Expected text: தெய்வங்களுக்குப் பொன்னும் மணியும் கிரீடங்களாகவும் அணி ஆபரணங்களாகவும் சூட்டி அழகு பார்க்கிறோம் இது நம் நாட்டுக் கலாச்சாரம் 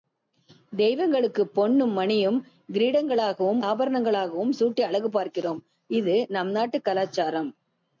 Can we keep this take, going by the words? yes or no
no